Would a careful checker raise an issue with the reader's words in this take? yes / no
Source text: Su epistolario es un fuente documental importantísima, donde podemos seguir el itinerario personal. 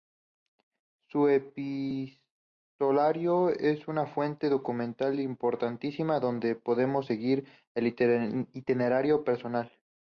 yes